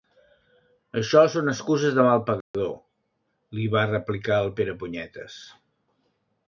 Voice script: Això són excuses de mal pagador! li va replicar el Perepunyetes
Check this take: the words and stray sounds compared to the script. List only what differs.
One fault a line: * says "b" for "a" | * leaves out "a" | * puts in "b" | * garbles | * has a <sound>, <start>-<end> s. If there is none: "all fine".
* has a dropout, 2.4-2.5 s